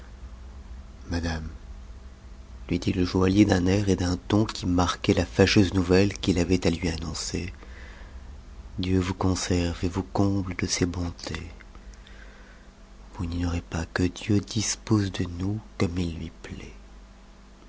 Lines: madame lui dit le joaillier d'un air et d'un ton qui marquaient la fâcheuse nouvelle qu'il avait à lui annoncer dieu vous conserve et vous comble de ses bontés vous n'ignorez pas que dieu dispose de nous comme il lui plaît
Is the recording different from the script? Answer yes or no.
no